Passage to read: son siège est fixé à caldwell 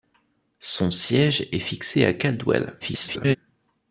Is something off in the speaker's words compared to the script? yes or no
yes